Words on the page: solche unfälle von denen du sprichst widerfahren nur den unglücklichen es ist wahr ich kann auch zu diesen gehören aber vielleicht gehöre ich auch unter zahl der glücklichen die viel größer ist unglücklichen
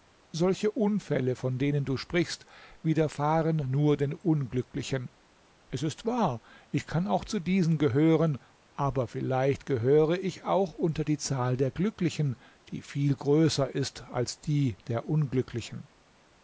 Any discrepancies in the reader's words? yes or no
yes